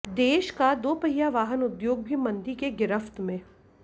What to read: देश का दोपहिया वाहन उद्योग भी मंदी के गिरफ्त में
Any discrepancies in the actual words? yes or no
no